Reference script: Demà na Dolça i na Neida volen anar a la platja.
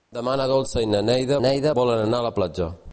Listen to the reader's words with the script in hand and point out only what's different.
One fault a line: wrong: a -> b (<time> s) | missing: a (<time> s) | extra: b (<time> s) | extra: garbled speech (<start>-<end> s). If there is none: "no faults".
extra: Neida (1.4 s)